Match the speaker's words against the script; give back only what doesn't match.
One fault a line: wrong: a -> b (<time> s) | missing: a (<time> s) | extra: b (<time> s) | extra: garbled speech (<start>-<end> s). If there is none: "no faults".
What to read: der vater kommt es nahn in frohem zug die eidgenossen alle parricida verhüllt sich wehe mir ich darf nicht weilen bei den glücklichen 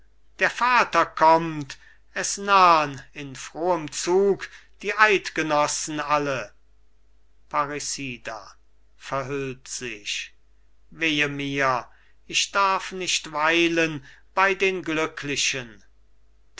no faults